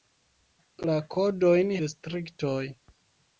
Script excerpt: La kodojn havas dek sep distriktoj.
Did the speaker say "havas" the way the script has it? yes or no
no